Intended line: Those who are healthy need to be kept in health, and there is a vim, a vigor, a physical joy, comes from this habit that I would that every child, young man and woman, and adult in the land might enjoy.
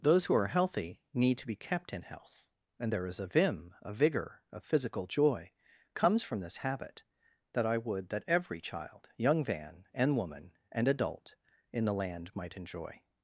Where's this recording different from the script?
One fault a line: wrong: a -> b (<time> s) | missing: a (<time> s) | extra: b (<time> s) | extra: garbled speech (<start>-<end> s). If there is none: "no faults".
wrong: man -> van (9.4 s)